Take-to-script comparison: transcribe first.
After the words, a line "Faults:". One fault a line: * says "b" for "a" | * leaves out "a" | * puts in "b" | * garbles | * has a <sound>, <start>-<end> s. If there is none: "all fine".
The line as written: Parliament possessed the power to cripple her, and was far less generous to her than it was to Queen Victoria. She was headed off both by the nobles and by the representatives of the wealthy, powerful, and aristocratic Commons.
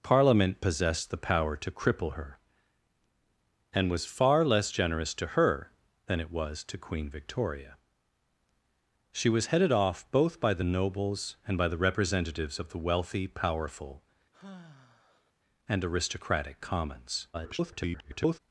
Parliament possessed the power to cripple her, and was far less generous to her than it was to Queen Victoria. She was headed off both by the nobles and by the representatives of the wealthy, powerful, and aristocratic Commons. [garbled]
Faults:
* has a sigh, 14.3-15.3 s
* garbles